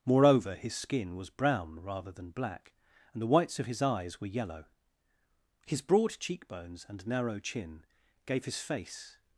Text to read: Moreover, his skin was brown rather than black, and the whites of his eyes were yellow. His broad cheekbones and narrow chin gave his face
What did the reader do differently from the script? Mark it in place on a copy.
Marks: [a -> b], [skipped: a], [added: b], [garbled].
Moreover, his skin was brown rather than black, and the whites of his eyes were yellow. His broad cheekbones and narrow chin gave his face